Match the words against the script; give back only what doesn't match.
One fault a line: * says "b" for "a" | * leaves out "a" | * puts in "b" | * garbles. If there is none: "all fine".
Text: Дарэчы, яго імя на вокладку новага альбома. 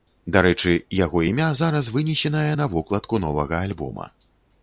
* puts in "зараз вынесенае"